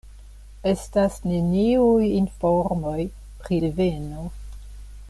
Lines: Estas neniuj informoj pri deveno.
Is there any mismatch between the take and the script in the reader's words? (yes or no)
no